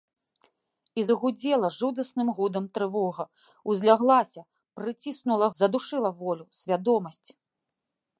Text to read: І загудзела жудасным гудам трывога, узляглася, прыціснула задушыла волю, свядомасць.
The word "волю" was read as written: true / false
true